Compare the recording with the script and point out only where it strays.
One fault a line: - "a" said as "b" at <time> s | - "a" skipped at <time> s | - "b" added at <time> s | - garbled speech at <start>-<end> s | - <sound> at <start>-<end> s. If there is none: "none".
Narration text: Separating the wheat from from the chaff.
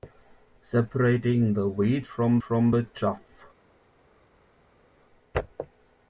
none